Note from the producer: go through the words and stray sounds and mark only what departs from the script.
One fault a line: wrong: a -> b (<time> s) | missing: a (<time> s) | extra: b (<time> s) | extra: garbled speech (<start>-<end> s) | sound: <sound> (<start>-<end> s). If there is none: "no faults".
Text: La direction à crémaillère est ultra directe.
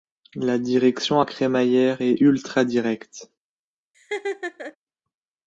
sound: laugh (3.9-4.8 s)